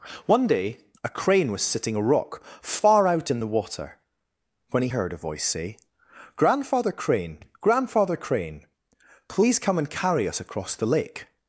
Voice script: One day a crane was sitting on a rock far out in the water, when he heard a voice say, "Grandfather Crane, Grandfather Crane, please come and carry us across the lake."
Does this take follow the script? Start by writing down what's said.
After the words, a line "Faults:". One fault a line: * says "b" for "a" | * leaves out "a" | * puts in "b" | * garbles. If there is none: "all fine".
One day a crane was sitting a rock far out in the water, when he heard a voice say, "Grandfather Crane, Grandfather Crane, please come and carry us across the lake."
Faults:
* leaves out "on"